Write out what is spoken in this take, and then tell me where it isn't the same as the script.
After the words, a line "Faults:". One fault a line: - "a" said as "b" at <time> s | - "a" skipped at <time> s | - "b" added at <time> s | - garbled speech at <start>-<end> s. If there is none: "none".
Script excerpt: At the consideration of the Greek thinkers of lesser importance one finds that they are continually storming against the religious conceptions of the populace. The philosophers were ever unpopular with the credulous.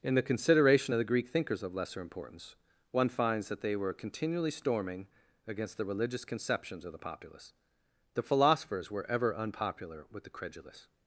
In the consideration of the Greek thinkers of lesser importance one finds that they were continually storming against the religious conceptions of the populace. The philosophers were ever unpopular with the credulous.
Faults:
- "At" said as "In" at 0.0 s
- "are" said as "were" at 3.8 s